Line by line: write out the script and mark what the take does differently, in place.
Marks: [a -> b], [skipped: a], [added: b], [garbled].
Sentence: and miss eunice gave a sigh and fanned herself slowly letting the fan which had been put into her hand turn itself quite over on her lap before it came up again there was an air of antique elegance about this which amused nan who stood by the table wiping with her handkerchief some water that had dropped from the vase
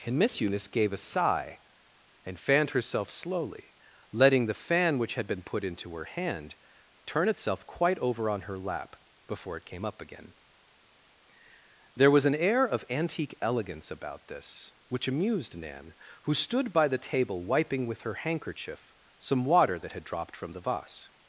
and miss eunice gave a sigh and fanned herself slowly letting the fan which had been put into her hand turn itself quite over on her lap before it came up again there was an air of antique elegance about this which amused nan who stood by the table wiping with her handkerchief some water that had dropped from the vase